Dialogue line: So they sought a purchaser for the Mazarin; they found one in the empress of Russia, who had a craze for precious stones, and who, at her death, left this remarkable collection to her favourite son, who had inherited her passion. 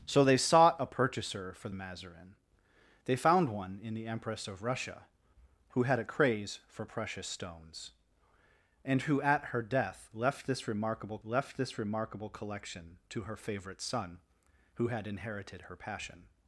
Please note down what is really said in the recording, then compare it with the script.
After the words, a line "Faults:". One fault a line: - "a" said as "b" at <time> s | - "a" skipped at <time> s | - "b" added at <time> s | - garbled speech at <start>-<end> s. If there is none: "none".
So they sought a purchaser for Mazarin; they found one in the empress of Russia, who had a craze for precious stones, and who, at her death, left this remarkable left this remarkable collection to her favourite son, who had inherited her passion.
Faults:
- "the" skipped at 1.7 s
- "left this remarkable" added at 11.2 s